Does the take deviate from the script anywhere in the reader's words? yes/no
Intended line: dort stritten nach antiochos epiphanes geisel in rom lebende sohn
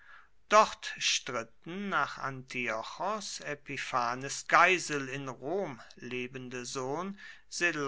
no